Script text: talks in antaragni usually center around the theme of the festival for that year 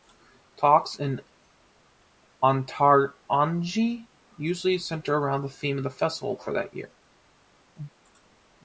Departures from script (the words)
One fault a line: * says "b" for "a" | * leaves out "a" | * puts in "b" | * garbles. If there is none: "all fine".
all fine